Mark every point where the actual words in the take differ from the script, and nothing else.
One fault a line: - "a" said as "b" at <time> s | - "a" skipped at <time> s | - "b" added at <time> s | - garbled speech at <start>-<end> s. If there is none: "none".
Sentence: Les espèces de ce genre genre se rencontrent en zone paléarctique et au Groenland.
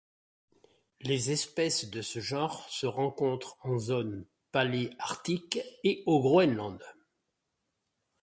- "genre" skipped at 2.7 s